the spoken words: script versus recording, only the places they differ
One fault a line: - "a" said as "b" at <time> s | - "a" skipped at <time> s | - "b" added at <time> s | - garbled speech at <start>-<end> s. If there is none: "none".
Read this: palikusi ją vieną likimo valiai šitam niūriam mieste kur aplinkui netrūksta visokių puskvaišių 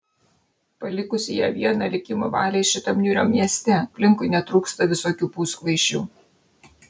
- "kur" skipped at 3.8 s